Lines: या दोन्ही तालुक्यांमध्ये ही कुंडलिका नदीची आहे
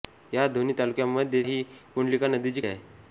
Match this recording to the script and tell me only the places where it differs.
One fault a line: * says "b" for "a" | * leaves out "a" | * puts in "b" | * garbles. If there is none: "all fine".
all fine